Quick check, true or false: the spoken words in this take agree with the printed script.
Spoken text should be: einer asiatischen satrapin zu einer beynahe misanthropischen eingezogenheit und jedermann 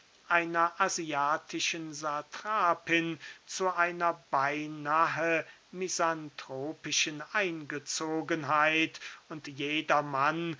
true